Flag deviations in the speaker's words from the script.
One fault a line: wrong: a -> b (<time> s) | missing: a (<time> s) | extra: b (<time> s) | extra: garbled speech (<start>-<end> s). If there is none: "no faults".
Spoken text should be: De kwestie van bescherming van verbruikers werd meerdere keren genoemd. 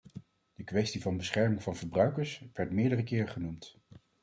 no faults